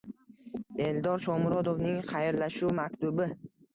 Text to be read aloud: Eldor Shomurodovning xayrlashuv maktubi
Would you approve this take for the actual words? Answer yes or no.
yes